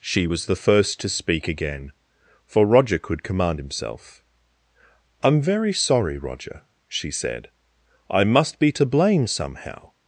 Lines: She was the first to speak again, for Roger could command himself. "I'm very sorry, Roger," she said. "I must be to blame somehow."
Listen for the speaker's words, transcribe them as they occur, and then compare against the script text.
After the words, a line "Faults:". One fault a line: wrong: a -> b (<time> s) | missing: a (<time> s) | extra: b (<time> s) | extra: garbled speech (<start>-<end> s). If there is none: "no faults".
She was the first to speak again, for Roger could command himself. "I'm very sorry, Roger," she said. "I must be to blame somehow."
Faults:
no faults